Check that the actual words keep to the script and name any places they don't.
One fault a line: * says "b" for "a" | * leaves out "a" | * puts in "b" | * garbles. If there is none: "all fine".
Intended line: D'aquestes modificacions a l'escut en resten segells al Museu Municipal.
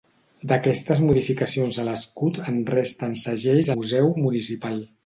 * leaves out "al"